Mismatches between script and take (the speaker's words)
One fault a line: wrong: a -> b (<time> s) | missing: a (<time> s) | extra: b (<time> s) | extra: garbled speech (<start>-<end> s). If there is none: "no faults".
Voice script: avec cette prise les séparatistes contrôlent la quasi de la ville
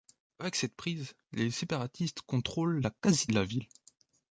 no faults